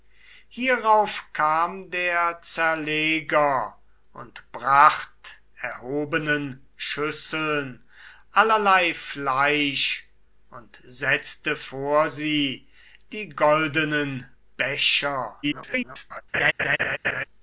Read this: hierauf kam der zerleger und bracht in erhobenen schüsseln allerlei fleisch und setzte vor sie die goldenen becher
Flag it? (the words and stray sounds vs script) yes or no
yes